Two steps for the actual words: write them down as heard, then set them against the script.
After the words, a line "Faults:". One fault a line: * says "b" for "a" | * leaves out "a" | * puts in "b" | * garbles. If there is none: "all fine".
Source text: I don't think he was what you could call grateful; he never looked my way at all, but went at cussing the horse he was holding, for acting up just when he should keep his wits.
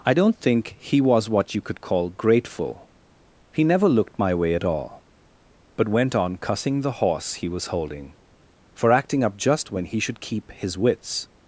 I don't think he was what you could call grateful; he never looked my way at all, but went on cussing the horse he was holding, for acting up just when he should keep his wits.
Faults:
* says "on" for "at"